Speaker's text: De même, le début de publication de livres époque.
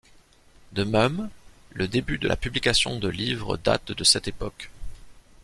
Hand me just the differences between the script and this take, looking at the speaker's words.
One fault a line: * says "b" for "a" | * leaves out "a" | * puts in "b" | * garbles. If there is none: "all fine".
* puts in "la"
* puts in "date de cette"